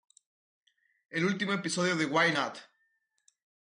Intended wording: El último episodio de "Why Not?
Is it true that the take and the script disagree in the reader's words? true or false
false